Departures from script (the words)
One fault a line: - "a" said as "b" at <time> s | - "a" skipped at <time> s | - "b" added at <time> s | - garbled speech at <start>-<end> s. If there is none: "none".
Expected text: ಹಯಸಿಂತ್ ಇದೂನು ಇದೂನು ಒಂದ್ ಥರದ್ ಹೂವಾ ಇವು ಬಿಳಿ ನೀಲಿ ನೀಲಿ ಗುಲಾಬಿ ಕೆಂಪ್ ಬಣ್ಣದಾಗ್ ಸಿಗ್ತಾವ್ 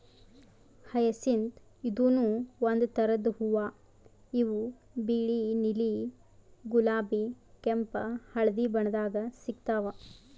- "ಇದೂನು" skipped at 2.2 s
- "ನೀಲಿ" skipped at 5.9 s
- "ಹಳ್ದಿ" added at 8.3 s